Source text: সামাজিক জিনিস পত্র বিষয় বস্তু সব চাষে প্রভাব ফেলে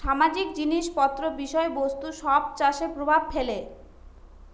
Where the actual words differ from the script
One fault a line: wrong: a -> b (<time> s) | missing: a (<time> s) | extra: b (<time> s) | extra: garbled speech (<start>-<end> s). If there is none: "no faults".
no faults